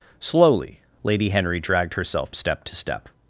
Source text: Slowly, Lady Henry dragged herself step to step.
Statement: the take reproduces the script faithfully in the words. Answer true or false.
true